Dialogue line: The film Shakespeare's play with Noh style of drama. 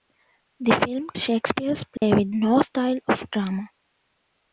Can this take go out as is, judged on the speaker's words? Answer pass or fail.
pass